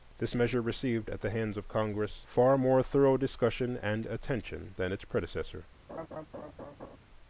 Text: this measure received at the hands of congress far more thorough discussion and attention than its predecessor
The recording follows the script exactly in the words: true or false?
true